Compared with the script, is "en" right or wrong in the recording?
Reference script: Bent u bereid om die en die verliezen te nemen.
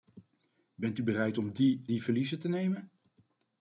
wrong